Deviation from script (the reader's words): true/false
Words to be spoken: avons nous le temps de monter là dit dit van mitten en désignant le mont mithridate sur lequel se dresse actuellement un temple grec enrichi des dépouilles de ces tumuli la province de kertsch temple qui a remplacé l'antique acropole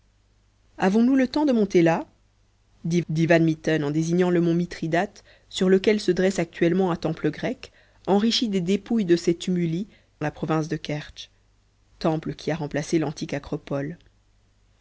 false